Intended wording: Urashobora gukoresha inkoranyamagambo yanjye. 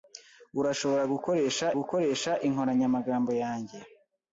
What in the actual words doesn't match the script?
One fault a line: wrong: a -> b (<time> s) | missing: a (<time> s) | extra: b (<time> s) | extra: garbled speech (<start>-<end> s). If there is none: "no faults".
extra: gukoresha (1.8 s)